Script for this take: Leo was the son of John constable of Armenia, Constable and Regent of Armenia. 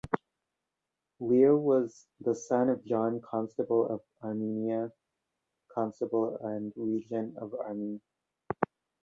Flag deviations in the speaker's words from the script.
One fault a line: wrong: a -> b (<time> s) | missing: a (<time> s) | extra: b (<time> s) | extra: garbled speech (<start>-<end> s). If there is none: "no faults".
no faults